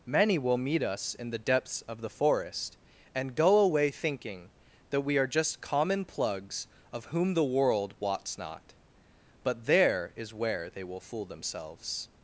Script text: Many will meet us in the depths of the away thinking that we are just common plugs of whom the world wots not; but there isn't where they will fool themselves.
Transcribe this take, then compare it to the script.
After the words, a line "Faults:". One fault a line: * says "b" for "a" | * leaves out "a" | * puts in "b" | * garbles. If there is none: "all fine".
Many will meet us in the depths of the forest and go away thinking that we are just common plugs of whom the world wots not; but there is where they will fool themselves.
Faults:
* puts in "forest and go"
* says "is" for "isn't"